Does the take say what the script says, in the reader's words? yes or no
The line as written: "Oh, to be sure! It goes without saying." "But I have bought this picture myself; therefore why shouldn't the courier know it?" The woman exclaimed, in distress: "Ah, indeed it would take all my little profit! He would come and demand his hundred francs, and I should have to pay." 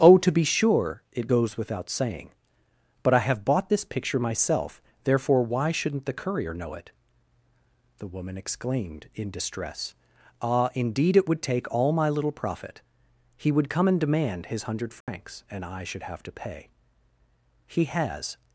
no